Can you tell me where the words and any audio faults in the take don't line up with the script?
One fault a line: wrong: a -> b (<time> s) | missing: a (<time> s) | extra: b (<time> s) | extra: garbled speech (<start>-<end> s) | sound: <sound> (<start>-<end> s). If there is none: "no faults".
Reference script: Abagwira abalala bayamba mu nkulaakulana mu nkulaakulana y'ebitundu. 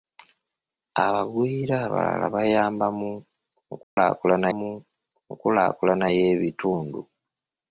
sound: dropout (3.8-4.0 s)